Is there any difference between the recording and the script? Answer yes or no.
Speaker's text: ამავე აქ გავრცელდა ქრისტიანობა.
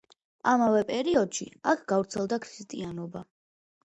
yes